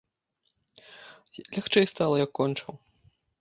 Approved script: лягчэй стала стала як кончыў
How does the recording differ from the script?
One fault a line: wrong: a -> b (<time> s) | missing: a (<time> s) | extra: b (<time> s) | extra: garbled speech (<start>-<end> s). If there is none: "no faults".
missing: стала (2.1 s)